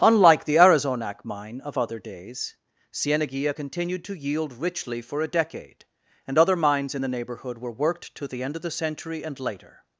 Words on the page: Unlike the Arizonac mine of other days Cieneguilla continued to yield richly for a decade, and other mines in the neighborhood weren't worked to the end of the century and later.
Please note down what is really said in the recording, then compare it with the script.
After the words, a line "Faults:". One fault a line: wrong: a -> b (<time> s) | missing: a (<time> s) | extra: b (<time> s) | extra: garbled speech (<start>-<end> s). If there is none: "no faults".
Unlike the Arizonac mine of other days Cieneguilla continued to yield richly for a decade, and other mines in the neighborhood were worked to the end of the century and later.
Faults:
wrong: weren't -> were (7.6 s)